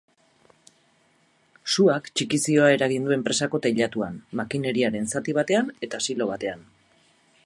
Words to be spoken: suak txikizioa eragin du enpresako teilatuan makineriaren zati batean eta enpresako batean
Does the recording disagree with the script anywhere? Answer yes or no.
yes